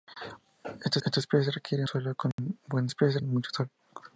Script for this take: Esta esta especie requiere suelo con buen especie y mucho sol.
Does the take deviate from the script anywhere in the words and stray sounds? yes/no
yes